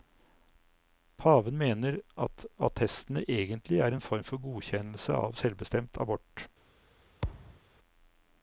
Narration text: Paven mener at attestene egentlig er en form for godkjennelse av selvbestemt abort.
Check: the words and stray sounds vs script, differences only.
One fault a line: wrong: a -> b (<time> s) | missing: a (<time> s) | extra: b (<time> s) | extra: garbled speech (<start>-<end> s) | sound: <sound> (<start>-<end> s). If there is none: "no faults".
sound: thud (7.2-7.6 s)